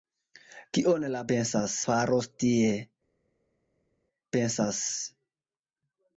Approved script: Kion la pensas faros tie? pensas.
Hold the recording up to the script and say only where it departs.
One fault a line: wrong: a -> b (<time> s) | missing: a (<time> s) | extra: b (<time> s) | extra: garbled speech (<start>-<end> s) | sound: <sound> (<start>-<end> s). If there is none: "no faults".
no faults